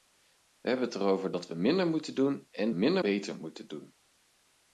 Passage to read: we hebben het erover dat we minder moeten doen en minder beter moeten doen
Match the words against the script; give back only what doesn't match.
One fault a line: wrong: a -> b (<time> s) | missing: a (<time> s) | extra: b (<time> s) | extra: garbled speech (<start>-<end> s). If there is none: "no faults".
no faults